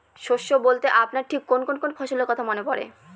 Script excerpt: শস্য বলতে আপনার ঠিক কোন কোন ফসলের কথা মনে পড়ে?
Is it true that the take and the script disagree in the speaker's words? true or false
true